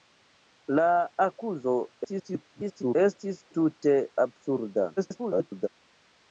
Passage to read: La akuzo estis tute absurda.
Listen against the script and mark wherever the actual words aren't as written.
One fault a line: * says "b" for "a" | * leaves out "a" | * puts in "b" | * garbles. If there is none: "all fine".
* garbles
* garbles